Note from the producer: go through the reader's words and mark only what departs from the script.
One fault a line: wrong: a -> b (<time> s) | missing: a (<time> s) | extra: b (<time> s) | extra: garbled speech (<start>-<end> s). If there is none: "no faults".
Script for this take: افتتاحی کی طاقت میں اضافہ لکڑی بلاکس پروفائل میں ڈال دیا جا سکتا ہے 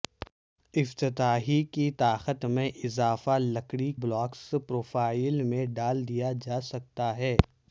no faults